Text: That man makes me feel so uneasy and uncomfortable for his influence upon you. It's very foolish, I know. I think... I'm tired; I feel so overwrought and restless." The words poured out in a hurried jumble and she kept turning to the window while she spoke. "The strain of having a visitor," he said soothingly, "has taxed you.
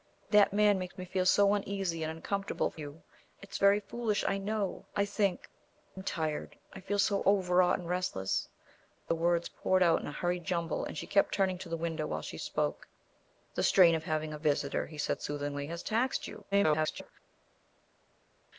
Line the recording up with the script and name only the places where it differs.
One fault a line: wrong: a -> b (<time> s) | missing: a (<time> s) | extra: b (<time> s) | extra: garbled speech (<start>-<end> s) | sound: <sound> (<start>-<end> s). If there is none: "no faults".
missing: his influence upon (2.8 s)
extra: garbled speech (16.5-17.1 s)